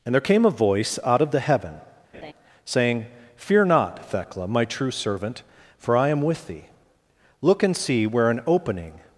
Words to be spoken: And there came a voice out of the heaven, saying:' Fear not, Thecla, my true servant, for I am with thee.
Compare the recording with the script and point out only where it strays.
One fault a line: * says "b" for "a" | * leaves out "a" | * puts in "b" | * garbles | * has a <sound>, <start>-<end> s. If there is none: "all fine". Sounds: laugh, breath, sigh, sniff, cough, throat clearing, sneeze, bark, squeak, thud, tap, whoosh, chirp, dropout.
* has a laugh, 2.1-2.3 s
* puts in "Look and see where an opening"